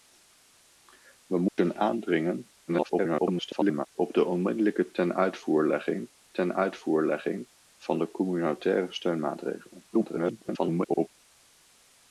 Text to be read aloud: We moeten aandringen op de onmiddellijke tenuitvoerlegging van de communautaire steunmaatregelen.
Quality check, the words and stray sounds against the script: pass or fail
fail